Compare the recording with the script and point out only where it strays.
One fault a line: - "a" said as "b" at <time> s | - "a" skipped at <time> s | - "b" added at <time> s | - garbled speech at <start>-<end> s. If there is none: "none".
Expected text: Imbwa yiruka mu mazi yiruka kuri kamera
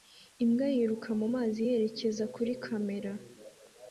- "yiruka" said as "yerekeza" at 1.7 s